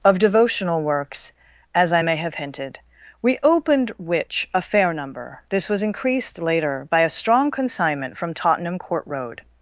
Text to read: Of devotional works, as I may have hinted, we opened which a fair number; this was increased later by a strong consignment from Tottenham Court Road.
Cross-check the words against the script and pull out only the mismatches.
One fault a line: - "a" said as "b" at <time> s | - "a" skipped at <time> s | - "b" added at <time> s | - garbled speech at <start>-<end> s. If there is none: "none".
none